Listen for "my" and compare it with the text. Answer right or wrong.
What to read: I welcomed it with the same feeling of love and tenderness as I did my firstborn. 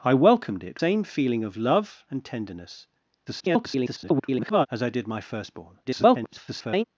right